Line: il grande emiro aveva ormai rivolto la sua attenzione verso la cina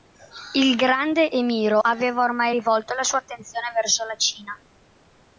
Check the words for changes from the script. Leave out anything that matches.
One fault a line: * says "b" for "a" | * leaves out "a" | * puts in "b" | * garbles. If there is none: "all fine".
all fine